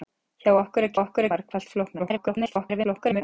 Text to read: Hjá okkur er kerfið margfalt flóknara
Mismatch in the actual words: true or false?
true